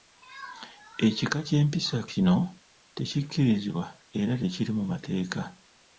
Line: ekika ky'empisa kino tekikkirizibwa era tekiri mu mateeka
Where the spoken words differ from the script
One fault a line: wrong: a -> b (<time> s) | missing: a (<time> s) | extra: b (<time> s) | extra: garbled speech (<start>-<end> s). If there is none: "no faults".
no faults